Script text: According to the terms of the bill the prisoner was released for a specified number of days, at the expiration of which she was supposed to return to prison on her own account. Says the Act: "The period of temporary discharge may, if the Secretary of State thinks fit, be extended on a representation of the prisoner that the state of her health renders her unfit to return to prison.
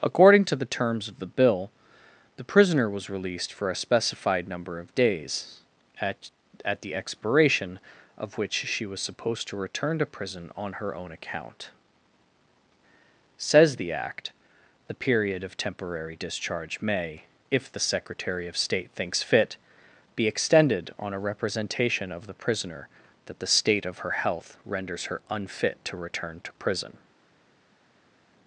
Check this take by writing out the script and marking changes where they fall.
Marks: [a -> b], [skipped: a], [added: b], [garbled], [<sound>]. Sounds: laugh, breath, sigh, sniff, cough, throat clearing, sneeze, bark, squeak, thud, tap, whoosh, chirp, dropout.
According to the terms of the bill the prisoner was released for a specified number of days, at [added: at] the expiration of which she was supposed to return to prison on her own account. Says the Act: "The period of temporary discharge may, if the Secretary of State thinks fit, be extended on a representation of the prisoner that the state of her health renders her unfit to return to prison.